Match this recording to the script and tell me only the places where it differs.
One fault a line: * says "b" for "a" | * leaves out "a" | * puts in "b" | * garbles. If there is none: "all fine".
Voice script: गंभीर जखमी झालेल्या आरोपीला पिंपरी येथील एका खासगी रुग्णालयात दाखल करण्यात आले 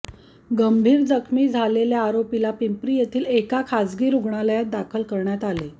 all fine